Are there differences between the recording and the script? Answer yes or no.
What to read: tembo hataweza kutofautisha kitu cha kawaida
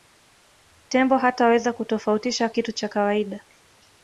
no